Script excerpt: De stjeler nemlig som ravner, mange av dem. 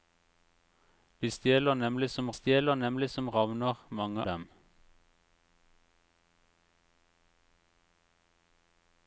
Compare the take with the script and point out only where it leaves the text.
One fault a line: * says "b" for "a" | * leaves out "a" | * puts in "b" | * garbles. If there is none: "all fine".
* puts in "stjeler nemlig som"
* leaves out "av"